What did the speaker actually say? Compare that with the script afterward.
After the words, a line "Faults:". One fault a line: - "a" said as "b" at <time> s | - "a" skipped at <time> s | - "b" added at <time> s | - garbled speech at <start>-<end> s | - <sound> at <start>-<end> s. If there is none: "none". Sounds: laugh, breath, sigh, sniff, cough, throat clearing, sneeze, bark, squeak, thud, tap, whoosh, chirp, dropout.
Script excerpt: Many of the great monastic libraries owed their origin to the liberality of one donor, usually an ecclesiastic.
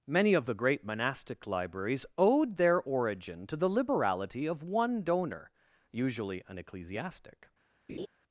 Many of the great monastic libraries owed their origin to the liberality of one donor, usually an ecclesiastic.
Faults:
- laugh at 7.9-8.1 s